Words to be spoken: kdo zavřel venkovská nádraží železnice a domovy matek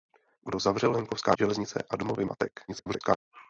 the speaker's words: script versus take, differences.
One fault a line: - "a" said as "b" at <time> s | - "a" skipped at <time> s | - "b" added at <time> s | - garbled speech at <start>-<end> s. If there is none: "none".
- "nádraží" skipped at 1.4 s
- garbled speech at 2.7-3.2 s